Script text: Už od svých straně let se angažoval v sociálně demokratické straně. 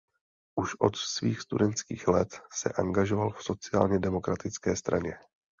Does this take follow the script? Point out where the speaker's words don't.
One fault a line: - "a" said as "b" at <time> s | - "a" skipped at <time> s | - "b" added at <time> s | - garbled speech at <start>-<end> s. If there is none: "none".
- "straně" said as "studentských" at 1.4 s